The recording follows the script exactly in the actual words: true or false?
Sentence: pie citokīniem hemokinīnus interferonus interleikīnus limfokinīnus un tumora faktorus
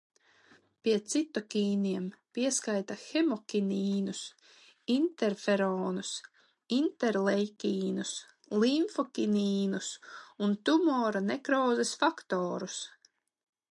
false